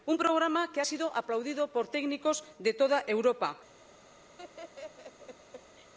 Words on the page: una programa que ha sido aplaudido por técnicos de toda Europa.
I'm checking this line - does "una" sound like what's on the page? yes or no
no